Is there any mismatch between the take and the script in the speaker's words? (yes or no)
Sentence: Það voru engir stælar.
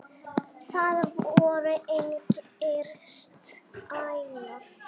no